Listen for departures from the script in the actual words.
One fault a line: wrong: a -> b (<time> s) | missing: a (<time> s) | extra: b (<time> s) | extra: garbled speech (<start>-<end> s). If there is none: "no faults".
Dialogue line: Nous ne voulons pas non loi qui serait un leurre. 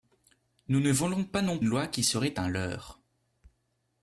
no faults